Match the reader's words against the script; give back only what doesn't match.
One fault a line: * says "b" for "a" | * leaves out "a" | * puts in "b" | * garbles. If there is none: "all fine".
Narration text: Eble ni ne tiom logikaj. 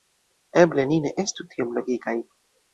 * puts in "estu"